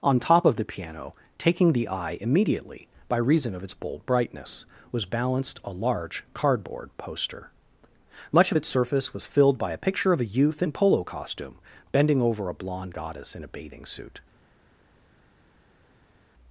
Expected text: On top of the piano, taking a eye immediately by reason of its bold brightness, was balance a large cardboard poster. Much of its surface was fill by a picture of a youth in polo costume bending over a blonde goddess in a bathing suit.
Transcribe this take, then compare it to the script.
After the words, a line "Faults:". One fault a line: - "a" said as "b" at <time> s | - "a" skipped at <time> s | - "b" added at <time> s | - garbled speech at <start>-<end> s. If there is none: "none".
On top of the piano, taking the eye immediately by reason of its bold brightness, was balanced a large cardboard poster. Much of its surface was filled by a picture of a youth in polo costume bending over a blonde goddess in a bathing suit.
Faults:
- "a" said as "the" at 1.7 s
- "balance" said as "balanced" at 5.0 s
- "fill" said as "filled" at 9.3 s